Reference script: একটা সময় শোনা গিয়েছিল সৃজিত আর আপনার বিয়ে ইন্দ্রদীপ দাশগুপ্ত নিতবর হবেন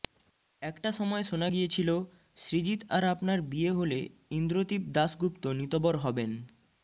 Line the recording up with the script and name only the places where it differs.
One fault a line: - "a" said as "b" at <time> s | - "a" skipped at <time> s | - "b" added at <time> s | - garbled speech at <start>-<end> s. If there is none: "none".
- "হলে" added at 3.7 s